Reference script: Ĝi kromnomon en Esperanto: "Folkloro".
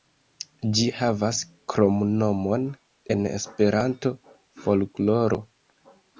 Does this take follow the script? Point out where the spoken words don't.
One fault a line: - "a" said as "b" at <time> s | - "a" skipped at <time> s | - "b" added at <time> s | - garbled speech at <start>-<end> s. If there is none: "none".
- "havas" added at 1.0 s